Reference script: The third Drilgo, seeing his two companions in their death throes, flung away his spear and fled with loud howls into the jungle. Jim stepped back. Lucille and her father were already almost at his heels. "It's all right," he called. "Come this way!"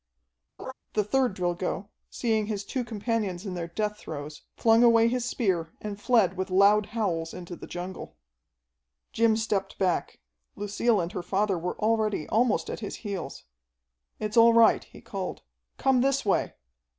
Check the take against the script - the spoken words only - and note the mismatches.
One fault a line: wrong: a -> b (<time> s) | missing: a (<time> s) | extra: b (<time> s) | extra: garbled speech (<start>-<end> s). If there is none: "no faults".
no faults